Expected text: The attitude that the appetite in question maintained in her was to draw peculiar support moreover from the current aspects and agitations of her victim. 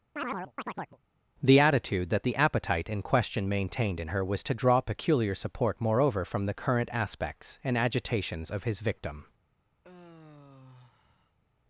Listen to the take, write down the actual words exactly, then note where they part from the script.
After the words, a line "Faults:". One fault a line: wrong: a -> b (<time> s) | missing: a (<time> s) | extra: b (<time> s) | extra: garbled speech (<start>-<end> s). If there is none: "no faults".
The attitude that the appetite in question maintained in her was to draw peculiar support moreover from the current aspects and agitations of his victim.
Faults:
wrong: her -> his (8.6 s)